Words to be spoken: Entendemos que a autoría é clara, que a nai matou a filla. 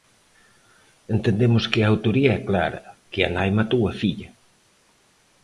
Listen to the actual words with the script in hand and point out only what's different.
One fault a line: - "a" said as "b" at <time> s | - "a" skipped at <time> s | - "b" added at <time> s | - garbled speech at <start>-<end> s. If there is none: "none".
none